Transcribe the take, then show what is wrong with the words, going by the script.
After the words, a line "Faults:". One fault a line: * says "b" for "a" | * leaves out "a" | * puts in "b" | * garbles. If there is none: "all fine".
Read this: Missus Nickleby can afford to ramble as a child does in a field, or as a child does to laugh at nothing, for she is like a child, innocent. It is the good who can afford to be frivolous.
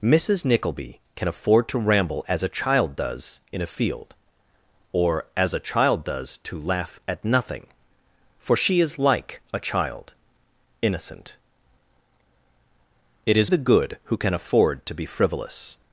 Missus Nickleby can afford to ramble as a child does in a field, or as a child does to laugh at nothing, for she is like a child, innocent. It is the good who can afford to be frivolous.
Faults:
all fine